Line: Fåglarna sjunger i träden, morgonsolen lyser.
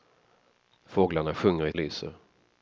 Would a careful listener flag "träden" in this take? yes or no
yes